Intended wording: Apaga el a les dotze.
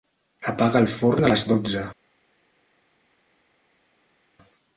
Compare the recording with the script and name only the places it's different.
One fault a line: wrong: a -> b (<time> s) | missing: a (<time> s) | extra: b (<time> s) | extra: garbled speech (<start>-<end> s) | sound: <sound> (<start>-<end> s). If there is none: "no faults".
extra: forn (0.9 s)